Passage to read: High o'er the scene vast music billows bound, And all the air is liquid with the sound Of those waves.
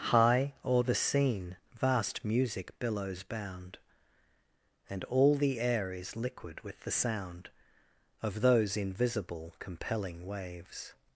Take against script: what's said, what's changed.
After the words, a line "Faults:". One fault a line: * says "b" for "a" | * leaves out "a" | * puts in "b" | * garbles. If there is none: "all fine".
High o'er the scene vast music billows bound, And all the air is liquid with the sound Of those invisible compelling waves.
Faults:
* puts in "invisible compelling"